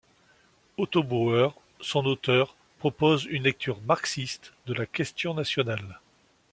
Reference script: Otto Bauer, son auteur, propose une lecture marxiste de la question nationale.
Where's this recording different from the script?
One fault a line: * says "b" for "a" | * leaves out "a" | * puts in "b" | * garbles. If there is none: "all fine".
all fine